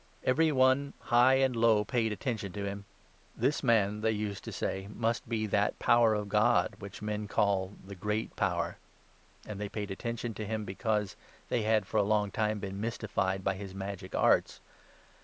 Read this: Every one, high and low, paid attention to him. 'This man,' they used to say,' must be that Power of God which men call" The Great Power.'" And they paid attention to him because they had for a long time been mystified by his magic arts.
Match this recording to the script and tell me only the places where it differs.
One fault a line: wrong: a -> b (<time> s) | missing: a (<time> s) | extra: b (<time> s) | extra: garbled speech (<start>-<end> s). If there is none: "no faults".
no faults